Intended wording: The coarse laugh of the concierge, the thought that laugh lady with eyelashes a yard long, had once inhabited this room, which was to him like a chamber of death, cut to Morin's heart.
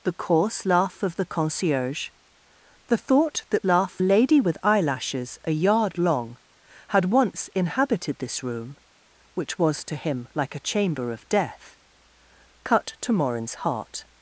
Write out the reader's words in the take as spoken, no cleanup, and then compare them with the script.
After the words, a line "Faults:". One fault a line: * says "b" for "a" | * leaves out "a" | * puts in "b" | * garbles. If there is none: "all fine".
The coarse laugh of the concierge, the thought that laugh lady with eyelashes a yard long, had once inhabited this room, which was to him like a chamber of death, cut to Morin's heart.
Faults:
all fine